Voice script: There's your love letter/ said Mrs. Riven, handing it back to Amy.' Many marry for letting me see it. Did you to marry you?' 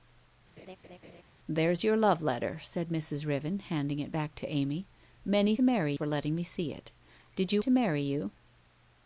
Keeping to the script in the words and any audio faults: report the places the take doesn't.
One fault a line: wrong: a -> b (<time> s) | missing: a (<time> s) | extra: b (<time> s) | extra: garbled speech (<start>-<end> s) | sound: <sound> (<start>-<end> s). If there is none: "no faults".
sound: laugh (0.6-1.2 s)